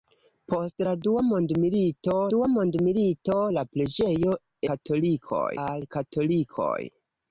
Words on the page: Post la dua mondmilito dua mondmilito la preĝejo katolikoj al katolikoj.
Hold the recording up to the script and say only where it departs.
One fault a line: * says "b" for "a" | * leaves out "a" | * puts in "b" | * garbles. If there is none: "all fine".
all fine